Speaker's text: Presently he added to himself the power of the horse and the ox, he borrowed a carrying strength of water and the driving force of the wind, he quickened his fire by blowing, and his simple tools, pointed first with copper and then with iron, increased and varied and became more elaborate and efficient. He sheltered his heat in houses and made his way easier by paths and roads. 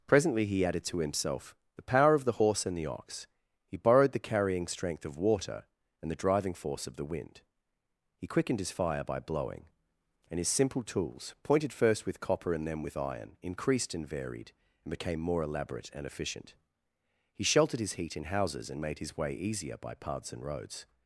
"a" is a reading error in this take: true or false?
true